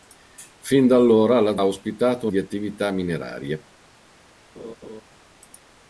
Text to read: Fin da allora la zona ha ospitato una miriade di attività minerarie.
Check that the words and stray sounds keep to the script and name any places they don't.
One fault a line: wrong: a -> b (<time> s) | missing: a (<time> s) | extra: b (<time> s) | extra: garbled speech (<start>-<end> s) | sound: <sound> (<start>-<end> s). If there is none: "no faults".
missing: zona (1.6 s)
missing: una miriade (2.3 s)
sound: laugh (4.5-5.0 s)